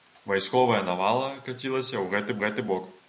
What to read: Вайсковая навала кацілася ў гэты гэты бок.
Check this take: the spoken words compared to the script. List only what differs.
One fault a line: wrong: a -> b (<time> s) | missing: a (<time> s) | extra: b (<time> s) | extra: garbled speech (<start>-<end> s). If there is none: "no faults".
no faults